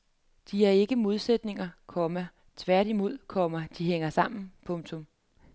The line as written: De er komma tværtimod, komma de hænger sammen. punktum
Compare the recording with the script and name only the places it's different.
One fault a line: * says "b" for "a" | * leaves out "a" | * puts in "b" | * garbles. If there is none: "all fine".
* puts in "ikke modsætninger"